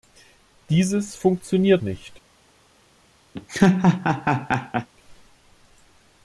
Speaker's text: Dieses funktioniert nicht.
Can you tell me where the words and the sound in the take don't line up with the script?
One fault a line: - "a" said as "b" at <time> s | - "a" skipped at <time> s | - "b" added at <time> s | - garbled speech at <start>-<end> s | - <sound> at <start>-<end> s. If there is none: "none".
- laugh at 3.3-4.9 s